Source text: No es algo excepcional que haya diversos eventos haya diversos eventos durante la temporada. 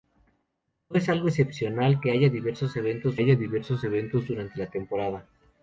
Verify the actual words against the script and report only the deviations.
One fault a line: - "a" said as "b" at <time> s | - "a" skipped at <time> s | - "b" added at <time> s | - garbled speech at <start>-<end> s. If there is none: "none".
none